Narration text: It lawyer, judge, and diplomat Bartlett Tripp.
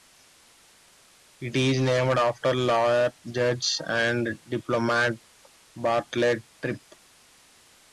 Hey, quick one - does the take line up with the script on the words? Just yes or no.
no